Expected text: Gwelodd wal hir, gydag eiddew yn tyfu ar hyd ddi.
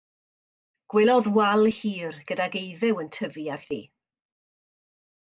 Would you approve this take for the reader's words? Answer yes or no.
no